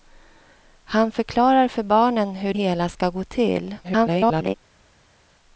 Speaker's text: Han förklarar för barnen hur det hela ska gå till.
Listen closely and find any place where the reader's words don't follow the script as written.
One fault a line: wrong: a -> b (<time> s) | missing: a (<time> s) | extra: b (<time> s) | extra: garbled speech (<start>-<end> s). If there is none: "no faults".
missing: det (2.5 s)
extra: garbled speech (3.8-4.5 s)